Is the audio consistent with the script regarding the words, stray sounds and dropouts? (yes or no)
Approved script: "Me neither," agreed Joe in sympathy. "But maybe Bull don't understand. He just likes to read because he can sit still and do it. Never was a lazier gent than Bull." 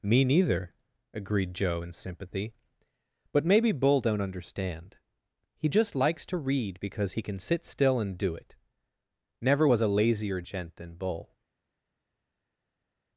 yes